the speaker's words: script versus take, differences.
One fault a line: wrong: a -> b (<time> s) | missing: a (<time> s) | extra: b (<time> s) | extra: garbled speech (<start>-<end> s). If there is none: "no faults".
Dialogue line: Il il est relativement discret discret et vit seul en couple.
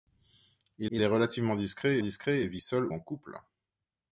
no faults